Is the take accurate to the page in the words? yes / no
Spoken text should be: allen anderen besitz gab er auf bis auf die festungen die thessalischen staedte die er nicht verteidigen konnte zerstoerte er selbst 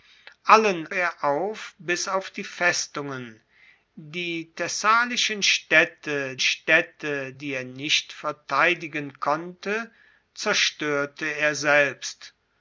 no